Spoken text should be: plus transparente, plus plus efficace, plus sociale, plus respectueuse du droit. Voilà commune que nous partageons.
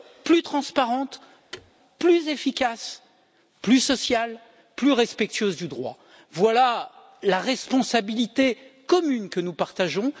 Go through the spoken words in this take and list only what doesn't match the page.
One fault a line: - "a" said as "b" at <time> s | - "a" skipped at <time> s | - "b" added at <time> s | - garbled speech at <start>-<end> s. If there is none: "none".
- "plus" skipped at 2.3 s
- "la responsabilité" added at 7.2 s